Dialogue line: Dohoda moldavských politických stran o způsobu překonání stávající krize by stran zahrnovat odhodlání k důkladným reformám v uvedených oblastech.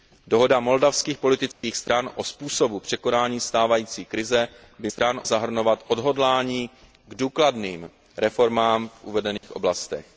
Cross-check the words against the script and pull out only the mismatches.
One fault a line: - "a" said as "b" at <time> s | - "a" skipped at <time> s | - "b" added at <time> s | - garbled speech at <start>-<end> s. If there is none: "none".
none